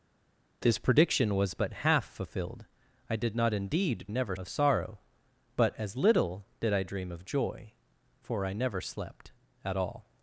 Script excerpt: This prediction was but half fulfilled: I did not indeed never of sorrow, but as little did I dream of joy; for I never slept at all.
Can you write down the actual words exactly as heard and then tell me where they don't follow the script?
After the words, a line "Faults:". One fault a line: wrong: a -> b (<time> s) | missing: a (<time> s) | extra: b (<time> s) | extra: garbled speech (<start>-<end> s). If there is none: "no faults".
This prediction was but half fulfilled: I did not indeed never of sorrow, but as little did I dream of joy; for I never slept at all.
Faults:
no faults